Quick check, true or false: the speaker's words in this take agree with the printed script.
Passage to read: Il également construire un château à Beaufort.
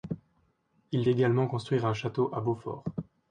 true